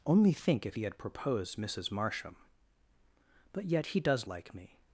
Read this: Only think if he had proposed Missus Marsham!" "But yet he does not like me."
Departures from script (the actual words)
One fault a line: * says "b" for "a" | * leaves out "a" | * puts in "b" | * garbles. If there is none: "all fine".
* leaves out "not"